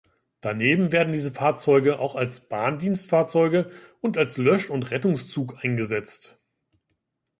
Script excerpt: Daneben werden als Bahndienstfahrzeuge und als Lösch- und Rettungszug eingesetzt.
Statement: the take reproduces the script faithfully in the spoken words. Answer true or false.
false